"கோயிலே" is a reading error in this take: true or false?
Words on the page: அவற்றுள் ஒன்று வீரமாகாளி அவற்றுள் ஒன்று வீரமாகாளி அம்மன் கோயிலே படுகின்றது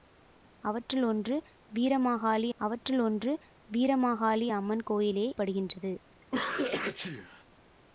false